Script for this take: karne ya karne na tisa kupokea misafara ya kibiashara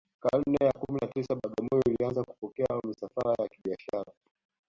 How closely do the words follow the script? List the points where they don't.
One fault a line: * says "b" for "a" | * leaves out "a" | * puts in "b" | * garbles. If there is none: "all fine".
* says "kumi" for "karne"
* puts in "bagamoyo ilianza"